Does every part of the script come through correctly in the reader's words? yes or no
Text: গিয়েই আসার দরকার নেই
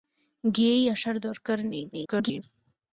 no